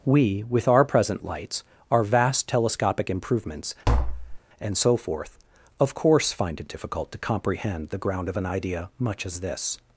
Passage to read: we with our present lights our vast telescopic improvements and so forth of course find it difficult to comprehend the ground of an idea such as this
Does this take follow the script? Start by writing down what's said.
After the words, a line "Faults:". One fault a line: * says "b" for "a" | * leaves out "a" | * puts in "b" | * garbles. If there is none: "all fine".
we with our present lights our vast telescopic improvements and so forth of course find it difficult to comprehend the ground of an idea much as this
Faults:
* says "much" for "such"